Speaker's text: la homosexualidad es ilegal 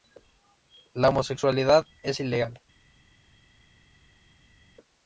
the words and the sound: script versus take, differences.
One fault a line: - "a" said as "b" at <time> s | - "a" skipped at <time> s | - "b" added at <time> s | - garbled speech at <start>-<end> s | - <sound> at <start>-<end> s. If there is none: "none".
none